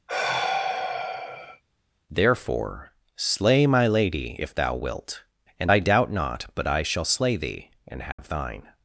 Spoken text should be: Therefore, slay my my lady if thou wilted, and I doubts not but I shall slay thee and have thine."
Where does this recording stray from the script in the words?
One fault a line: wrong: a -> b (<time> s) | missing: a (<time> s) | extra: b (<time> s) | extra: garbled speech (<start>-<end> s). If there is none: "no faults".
missing: my (3.9 s)
wrong: wilted -> wilt (4.8 s)
wrong: doubts -> doubt (5.8 s)